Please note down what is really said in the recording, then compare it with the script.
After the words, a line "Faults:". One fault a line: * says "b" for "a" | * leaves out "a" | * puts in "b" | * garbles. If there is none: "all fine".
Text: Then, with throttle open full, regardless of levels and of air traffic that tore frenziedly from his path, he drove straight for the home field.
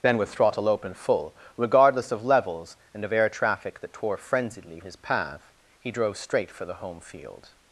Then, with throttle open full, regardless of levels and of air traffic that tore frenziedly his path, he drove straight for the home field.
Faults:
* leaves out "from"